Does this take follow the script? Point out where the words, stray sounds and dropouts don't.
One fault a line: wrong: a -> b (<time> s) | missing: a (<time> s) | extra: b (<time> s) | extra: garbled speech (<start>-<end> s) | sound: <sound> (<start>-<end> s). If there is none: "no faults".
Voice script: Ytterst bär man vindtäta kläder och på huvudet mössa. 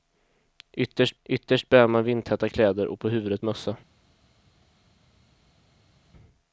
extra: ytterst (1.2 s)